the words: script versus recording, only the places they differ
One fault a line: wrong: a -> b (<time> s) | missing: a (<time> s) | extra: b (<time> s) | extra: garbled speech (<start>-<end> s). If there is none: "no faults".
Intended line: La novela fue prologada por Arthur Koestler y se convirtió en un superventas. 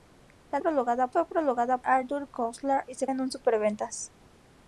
wrong: novela -> prologada (0.6 s)
missing: por (1.8 s)
missing: convirtió (3.1 s)